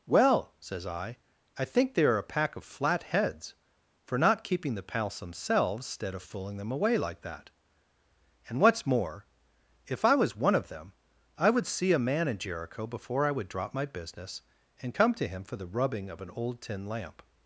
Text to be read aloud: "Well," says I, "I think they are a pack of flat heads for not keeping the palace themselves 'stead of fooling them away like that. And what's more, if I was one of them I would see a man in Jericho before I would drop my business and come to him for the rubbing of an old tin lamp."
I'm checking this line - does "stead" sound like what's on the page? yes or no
no